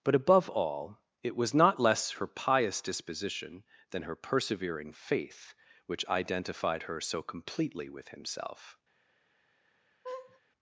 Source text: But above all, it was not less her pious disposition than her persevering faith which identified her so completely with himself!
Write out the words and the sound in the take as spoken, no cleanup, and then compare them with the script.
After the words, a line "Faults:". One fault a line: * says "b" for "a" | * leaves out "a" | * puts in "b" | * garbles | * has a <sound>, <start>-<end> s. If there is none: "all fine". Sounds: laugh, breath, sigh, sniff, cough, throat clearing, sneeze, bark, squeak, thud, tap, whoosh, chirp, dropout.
But above all, it was not less her pious disposition than her persevering faith which identified her so completely with himself!
Faults:
* has a laugh, 10.0-10.4 s